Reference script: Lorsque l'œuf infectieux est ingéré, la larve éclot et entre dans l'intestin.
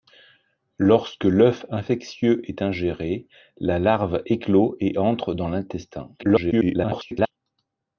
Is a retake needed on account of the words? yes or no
yes